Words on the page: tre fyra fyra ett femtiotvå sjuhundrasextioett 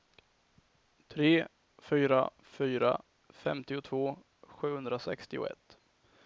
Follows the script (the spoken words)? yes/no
no